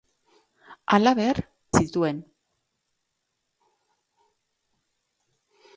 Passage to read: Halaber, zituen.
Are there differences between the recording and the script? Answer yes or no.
no